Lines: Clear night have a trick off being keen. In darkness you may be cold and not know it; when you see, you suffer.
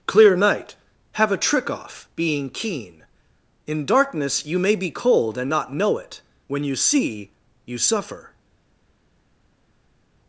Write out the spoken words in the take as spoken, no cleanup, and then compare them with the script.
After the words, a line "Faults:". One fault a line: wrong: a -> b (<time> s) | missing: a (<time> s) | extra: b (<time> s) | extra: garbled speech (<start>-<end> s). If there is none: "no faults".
Clear night have a trick off being keen. In darkness you may be cold and not know it; when you see, you suffer.
Faults:
no faults